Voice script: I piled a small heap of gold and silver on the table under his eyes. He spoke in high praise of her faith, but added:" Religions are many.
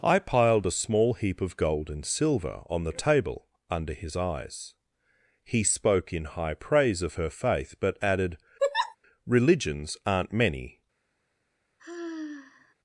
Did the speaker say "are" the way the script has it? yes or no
no